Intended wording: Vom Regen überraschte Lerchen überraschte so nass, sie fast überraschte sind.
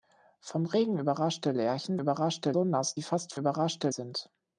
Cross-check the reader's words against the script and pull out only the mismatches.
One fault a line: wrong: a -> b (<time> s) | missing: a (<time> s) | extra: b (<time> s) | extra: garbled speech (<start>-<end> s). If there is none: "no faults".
no faults